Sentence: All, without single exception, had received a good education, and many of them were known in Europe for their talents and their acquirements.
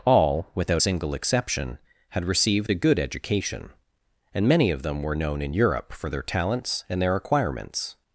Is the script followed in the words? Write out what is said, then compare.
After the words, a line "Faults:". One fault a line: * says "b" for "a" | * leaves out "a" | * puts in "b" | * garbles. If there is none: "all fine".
All, without single exception, had received a good education, and many of them were known in Europe for their talents and their acquirements.
Faults:
all fine